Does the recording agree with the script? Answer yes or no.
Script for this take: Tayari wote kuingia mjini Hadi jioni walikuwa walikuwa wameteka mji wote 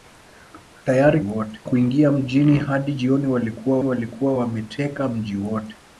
yes